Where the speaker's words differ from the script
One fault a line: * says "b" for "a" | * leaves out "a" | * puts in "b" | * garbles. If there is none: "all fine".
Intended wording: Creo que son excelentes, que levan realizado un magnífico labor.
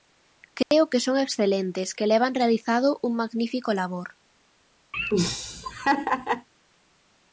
all fine